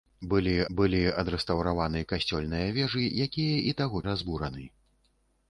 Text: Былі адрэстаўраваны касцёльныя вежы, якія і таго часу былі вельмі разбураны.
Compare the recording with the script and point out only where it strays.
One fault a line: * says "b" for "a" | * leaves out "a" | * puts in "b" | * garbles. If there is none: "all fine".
* puts in "былі"
* leaves out "часу былі вельмі"